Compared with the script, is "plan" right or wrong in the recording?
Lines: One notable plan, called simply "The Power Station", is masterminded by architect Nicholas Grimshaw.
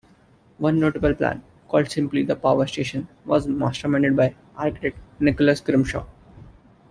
right